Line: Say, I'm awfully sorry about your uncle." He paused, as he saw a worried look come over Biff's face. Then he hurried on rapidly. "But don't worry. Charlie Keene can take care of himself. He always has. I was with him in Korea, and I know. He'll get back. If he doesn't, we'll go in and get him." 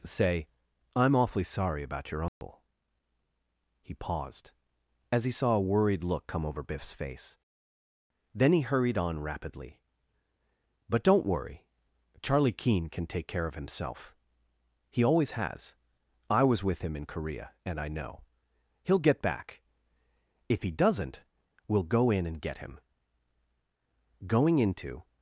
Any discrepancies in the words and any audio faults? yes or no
yes